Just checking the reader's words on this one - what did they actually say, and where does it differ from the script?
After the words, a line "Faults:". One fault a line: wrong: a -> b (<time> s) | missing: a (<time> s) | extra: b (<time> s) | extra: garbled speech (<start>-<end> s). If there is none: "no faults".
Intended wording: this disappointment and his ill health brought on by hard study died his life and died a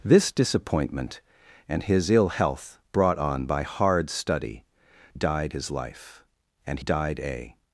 this disappointment and his ill health brought on by hard study died his life and died a
Faults:
no faults